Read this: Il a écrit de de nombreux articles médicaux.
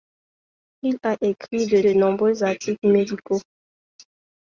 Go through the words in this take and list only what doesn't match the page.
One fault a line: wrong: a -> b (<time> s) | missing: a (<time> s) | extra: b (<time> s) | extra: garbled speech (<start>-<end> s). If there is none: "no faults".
no faults